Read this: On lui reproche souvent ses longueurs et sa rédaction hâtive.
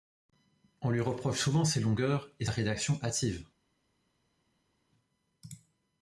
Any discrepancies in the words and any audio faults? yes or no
yes